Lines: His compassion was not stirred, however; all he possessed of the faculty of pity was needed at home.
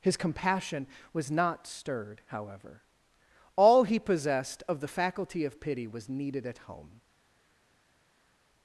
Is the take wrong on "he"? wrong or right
right